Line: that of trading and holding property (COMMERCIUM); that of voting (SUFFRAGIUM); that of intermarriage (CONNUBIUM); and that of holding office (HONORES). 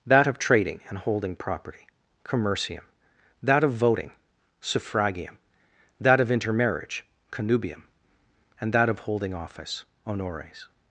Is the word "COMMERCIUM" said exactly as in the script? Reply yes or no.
yes